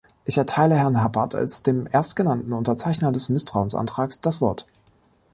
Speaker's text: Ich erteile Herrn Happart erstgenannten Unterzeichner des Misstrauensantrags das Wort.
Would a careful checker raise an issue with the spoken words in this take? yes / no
yes